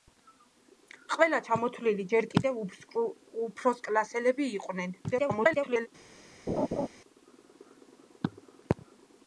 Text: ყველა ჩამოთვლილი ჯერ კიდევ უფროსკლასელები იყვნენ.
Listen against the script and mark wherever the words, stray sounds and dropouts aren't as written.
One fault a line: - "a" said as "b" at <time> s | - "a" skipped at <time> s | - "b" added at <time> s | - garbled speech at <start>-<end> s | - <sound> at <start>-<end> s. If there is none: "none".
- garbled speech at 5.0-5.9 s
- laugh at 6.5-6.9 s